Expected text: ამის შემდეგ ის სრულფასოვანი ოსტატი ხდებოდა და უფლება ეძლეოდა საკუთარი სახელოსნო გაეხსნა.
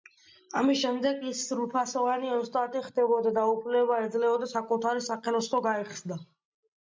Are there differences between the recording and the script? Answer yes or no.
no